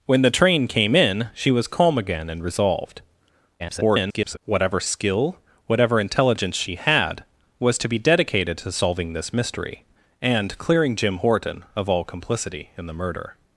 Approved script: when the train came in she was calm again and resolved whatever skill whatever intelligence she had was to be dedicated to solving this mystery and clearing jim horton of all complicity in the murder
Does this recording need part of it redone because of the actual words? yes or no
yes